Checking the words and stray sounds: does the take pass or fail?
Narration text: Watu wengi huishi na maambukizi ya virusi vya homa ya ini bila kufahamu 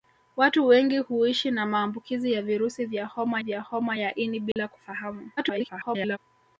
fail